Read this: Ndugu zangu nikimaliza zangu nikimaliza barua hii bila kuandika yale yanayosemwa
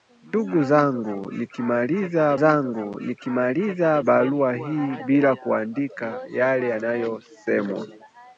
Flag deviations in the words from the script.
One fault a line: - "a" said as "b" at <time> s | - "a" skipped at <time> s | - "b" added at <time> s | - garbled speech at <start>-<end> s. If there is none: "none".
none